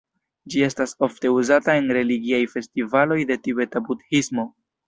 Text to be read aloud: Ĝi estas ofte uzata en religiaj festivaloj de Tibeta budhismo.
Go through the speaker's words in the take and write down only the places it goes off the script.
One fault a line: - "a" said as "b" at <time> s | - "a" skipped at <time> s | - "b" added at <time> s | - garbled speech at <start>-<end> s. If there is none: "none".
none